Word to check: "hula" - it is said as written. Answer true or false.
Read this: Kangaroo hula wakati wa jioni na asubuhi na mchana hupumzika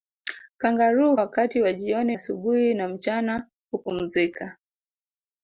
false